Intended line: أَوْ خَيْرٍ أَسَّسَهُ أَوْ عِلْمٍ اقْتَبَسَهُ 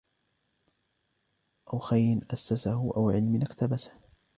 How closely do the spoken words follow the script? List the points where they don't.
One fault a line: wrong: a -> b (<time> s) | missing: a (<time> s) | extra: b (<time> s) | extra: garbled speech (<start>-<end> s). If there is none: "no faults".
no faults